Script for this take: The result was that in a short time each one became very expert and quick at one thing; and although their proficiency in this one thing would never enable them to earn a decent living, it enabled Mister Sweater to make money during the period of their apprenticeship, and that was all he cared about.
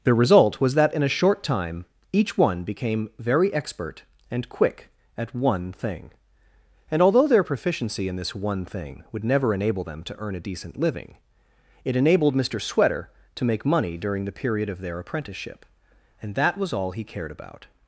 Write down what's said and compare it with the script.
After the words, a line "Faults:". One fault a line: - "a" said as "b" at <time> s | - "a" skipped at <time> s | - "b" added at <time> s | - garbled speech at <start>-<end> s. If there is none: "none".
The result was that in a short time each one became very expert and quick at one thing; and although their proficiency in this one thing would never enable them to earn a decent living, it enabled Mister Sweater to make money during the period of their apprenticeship, and that was all he cared about.
Faults:
none